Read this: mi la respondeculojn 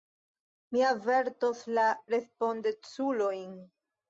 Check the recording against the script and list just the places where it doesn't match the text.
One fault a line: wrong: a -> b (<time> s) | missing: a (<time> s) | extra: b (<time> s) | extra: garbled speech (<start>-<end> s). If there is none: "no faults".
extra: avertos (0.9 s)